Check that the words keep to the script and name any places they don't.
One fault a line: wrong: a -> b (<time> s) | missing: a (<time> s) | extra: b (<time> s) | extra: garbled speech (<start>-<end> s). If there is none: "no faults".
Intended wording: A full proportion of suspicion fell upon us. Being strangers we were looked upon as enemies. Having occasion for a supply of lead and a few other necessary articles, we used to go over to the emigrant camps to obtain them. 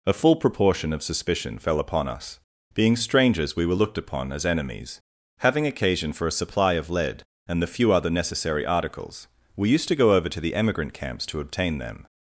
wrong: a -> the (7.6 s)